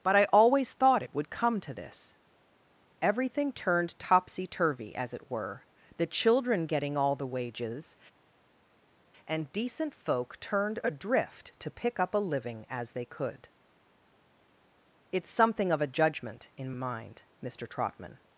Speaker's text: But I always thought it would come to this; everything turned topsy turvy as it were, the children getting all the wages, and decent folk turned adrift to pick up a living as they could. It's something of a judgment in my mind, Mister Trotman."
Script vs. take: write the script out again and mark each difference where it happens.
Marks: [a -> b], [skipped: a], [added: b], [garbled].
But I always thought it would come to this; everything turned topsy turvy as it were, the children getting all the wages, and decent folk turned adrift to pick up a living as they could. It's something of a judgment in [skipped: my] mind, Mister Trotman."